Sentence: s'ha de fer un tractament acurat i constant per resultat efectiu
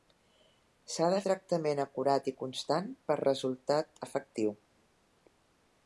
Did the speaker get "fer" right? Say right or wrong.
wrong